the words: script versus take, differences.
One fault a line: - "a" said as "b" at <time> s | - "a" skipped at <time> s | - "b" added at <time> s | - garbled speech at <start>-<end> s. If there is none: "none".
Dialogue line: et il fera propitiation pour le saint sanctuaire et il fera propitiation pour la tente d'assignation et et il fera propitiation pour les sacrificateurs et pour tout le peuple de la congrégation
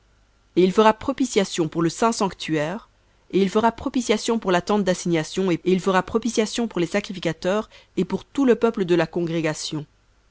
none